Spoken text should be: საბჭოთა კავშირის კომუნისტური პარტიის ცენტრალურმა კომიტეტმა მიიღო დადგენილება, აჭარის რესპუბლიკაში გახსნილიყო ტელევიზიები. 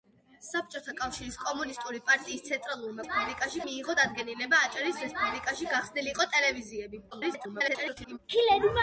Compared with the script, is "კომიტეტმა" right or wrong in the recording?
wrong